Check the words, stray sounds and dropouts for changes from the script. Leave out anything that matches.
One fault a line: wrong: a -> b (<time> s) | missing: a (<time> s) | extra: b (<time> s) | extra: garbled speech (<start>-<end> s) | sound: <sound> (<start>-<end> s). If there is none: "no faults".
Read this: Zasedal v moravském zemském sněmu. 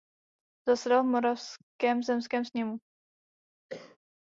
sound: cough (3.7-4.0 s)